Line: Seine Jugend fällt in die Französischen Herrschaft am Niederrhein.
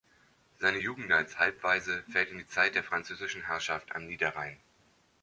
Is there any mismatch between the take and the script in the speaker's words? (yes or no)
yes